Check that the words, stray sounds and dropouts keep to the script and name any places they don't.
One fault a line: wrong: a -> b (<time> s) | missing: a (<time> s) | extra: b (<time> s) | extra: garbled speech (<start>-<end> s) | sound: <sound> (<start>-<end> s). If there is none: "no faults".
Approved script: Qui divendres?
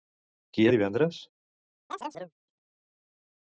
sound: chirp (1.9-2.3 s)